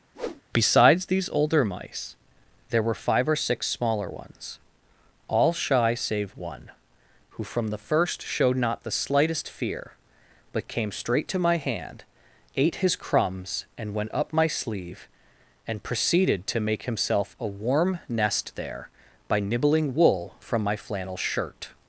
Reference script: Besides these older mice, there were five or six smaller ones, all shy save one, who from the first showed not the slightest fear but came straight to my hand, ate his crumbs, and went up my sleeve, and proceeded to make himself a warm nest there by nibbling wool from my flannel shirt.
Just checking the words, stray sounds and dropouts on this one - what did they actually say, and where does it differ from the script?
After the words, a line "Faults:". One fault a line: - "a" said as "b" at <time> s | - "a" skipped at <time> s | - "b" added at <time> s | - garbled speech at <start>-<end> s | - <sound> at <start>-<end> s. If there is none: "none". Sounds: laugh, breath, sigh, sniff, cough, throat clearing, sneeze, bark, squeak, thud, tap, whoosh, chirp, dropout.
Besides these older mice, there were five or six smaller ones, all shy save one, who from the first showed not the slightest fear but came straight to my hand, ate his crumbs, and went up my sleeve, and proceeded to make himself a warm nest there by nibbling wool from my flannel shirt.
Faults:
- whoosh at 0.1-0.4 s